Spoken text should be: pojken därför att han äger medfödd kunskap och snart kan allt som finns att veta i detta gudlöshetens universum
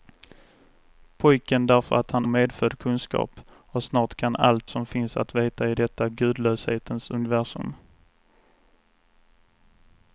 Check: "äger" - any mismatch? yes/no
yes